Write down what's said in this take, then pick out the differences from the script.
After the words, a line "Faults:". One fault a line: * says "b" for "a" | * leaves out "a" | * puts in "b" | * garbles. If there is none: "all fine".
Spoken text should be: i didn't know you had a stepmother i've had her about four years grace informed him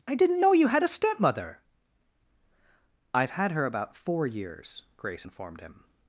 i didn't know you had a stepmother i've had her about four years grace informed him
Faults:
all fine